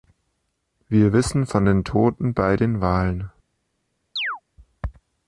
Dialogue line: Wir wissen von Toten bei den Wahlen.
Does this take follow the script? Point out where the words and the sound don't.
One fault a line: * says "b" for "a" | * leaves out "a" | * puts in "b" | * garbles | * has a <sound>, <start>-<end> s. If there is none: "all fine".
* puts in "den"
* has a chirp, 4.2-4.4 s